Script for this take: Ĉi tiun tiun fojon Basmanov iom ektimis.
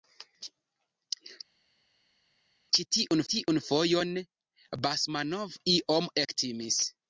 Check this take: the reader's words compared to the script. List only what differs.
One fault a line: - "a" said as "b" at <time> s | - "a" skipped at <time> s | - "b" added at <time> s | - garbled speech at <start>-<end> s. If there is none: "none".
none